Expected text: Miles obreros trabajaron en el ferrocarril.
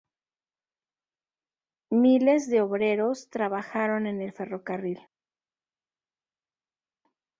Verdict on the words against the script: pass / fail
fail